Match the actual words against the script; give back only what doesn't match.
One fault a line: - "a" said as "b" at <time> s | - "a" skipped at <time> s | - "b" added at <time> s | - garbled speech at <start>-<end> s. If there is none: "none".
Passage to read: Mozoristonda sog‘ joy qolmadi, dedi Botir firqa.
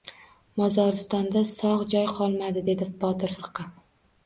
none